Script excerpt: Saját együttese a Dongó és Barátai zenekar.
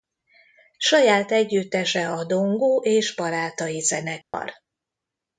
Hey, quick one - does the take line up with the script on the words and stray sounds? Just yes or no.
no